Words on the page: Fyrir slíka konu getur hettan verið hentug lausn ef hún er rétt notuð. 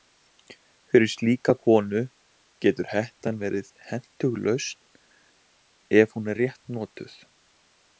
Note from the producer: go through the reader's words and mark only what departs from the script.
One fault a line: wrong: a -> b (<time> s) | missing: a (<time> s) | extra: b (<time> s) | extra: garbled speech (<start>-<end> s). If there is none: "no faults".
no faults